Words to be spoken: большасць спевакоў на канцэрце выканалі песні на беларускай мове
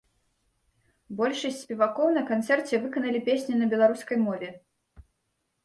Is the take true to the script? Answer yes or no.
yes